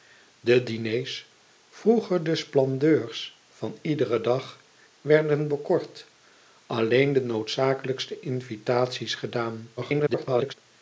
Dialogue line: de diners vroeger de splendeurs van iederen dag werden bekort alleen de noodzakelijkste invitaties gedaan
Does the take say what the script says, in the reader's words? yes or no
no